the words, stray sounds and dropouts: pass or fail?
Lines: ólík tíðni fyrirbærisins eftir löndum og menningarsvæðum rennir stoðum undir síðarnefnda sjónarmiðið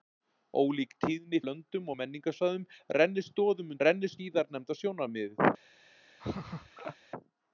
fail